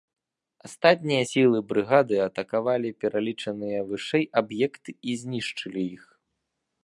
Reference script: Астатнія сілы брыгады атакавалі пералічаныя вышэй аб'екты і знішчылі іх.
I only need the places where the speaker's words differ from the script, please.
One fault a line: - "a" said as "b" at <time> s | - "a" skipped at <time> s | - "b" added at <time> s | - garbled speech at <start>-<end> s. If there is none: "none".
none